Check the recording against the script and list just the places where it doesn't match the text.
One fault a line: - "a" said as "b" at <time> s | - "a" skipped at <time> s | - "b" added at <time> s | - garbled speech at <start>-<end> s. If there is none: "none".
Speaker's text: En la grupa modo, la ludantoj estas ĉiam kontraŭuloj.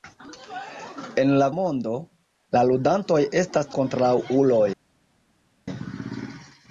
- "grupa" skipped at 1.5 s
- "ĉiam" skipped at 3.7 s